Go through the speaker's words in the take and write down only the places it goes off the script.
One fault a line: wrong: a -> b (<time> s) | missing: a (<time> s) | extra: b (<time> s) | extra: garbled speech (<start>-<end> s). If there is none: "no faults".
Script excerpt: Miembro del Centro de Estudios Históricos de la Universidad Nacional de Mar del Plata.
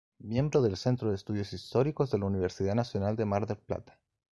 no faults